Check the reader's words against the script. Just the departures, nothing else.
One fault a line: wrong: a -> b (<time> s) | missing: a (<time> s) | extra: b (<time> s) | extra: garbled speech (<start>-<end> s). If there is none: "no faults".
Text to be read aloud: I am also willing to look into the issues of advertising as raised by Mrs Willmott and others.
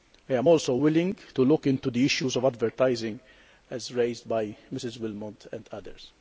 no faults